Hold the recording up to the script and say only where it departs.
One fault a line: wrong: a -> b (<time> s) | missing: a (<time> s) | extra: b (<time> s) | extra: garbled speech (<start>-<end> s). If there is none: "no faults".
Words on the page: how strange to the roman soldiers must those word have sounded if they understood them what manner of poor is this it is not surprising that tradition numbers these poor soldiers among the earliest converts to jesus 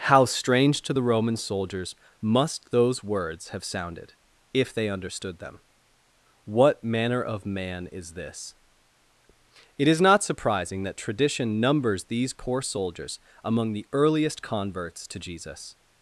wrong: word -> words (3.0 s)
wrong: poor -> man (7.4 s)